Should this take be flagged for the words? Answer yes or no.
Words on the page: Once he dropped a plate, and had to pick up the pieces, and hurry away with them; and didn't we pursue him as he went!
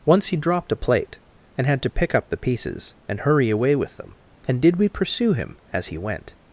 yes